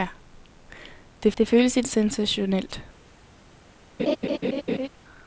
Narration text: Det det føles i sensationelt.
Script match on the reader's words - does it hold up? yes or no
yes